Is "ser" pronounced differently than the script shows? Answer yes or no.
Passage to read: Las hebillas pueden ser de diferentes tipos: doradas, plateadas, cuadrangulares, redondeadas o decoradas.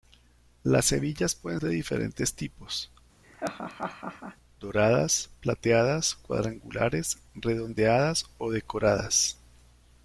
yes